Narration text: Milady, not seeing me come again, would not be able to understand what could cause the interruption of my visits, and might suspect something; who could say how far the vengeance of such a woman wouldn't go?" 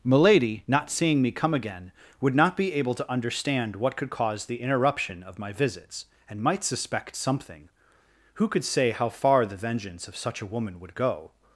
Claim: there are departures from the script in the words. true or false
true